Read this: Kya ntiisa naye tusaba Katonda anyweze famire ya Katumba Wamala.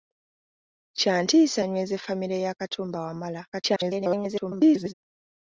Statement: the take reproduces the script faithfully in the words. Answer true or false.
false